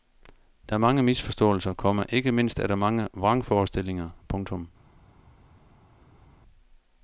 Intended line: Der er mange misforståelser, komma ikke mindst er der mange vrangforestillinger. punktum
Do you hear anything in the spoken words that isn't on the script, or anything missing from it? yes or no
no